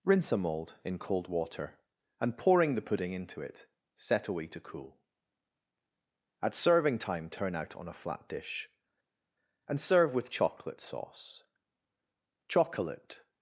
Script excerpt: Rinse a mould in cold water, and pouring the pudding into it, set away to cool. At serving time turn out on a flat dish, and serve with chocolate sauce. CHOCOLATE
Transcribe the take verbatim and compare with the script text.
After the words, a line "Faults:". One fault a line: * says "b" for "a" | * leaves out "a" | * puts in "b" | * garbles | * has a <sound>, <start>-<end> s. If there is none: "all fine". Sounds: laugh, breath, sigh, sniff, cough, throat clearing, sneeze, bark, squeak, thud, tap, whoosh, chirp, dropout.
Rinse a mould in cold water, and pouring the pudding into it, set away to cool. At serving time turn out on a flat dish, and serve with chocolate sauce. CHOCOLATE
Faults:
all fine